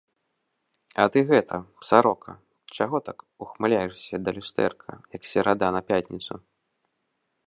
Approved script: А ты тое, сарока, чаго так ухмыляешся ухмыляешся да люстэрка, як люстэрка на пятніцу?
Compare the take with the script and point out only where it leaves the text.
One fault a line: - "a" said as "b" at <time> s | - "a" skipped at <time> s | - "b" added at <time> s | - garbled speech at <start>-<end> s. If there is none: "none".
- "тое" said as "гэта" at 1.3 s
- "ухмыляешся" skipped at 4.1 s
- "люстэрка" said as "серада" at 5.3 s